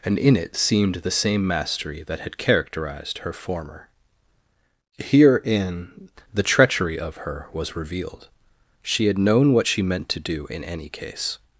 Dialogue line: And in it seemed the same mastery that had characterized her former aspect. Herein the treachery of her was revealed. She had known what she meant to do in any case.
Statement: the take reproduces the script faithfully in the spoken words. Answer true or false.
false